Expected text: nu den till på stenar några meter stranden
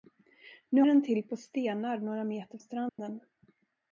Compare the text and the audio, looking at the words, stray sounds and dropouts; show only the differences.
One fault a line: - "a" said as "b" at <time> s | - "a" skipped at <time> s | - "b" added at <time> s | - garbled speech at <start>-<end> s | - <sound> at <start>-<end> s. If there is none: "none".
- dropout at 2.9-3.0 s